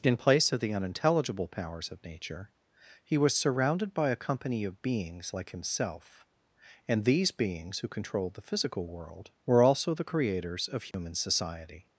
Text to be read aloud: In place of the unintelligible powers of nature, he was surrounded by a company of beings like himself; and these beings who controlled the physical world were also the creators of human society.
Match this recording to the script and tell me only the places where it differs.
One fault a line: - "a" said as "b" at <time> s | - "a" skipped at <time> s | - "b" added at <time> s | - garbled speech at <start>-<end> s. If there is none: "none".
none